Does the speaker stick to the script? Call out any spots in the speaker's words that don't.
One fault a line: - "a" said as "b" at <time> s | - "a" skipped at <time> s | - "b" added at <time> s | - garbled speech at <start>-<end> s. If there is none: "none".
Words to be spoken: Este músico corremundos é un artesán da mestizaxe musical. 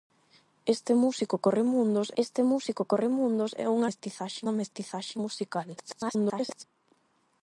- "este músico corremundos" added at 2.2 s
- "artesán" said as "mestizaxe" at 3.9 s
- garbled speech at 5.8-6.6 s